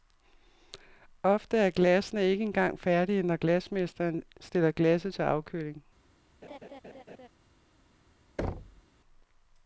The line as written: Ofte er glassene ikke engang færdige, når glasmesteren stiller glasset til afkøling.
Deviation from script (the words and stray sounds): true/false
true